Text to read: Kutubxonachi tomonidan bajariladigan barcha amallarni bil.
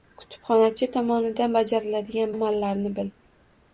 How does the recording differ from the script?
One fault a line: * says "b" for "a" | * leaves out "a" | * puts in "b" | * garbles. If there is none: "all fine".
* leaves out "barcha"